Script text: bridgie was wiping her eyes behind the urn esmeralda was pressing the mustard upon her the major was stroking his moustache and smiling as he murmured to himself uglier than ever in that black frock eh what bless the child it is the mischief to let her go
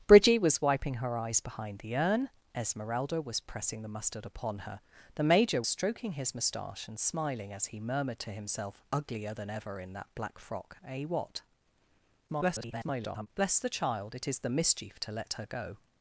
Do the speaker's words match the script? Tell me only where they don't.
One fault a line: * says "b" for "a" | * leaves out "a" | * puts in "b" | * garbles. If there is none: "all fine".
* leaves out "was"
* garbles